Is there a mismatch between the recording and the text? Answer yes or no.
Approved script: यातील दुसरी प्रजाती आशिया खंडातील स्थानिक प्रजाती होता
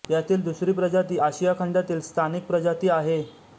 yes